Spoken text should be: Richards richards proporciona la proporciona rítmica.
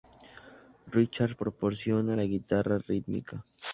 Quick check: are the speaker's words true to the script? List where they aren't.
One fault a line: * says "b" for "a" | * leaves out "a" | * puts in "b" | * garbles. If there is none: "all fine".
* leaves out "richards"
* says "guitarra" for "proporciona"